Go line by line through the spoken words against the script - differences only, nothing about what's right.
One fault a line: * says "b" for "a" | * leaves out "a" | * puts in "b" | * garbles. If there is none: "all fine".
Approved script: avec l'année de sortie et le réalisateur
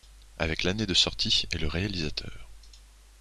all fine